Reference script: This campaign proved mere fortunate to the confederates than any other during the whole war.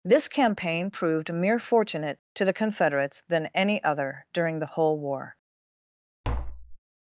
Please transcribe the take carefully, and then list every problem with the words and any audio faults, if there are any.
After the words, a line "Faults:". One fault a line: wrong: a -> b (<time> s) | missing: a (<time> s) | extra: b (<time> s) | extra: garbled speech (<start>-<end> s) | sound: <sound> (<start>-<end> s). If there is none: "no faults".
This campaign proved mere fortunate to the confederates than any other during the whole war.
Faults:
sound: tap (6.2-6.8 s)